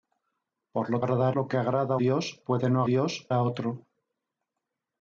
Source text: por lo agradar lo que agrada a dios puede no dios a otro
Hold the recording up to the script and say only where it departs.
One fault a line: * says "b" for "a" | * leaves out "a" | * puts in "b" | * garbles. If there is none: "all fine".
all fine